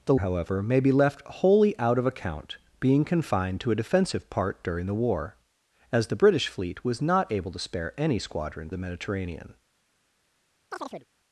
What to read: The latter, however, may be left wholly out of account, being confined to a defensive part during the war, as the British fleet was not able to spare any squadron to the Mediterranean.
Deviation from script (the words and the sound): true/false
true